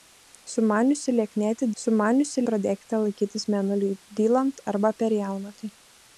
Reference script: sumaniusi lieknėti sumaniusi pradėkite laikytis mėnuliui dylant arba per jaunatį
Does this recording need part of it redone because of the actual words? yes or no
no